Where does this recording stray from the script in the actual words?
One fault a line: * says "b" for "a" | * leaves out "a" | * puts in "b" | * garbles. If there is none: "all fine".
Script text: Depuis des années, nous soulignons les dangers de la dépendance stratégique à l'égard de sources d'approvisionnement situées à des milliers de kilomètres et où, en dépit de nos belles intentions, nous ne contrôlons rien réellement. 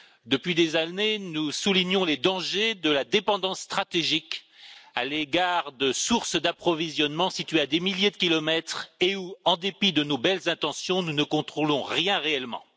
all fine